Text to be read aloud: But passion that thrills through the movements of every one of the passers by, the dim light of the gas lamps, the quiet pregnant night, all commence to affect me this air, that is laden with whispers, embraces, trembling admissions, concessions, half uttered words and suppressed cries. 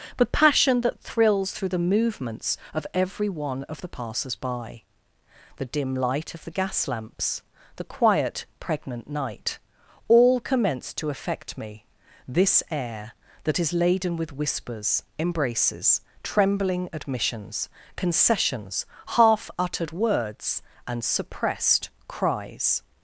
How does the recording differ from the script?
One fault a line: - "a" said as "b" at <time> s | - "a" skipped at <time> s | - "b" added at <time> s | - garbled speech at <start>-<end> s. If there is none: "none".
none